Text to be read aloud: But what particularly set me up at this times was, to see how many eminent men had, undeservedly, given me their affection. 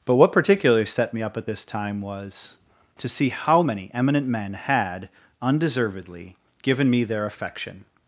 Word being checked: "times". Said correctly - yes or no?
no